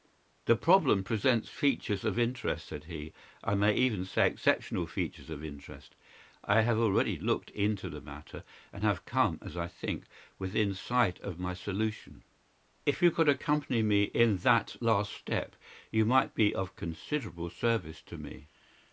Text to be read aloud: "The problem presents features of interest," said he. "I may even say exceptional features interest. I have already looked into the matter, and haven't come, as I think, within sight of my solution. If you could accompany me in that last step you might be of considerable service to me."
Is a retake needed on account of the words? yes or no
yes